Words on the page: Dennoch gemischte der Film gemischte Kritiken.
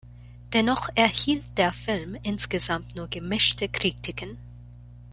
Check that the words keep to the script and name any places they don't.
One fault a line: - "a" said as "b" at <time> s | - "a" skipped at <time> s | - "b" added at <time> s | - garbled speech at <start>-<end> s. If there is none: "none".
- "gemischte" said as "erhielt" at 0.9 s
- "insgesamt nur" added at 2.2 s